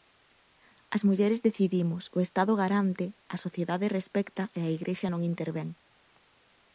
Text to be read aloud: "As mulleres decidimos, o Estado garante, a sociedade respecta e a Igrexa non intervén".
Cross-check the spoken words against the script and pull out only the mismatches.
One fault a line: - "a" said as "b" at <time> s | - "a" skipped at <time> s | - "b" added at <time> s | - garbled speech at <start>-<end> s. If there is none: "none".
none